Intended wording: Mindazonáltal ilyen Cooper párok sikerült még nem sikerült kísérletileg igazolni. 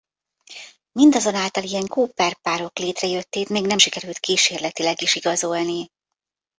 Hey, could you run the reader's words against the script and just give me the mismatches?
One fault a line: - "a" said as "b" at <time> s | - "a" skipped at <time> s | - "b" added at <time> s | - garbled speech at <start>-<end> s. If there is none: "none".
- "sikerült" said as "létrejöttét" at 2.8 s
- "is" added at 5.0 s